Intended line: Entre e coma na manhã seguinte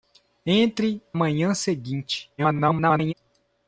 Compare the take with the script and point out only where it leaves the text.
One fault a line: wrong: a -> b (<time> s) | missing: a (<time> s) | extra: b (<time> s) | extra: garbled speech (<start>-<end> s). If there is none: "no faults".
missing: e coma na (1.0 s)
extra: garbled speech (2.4-3.1 s)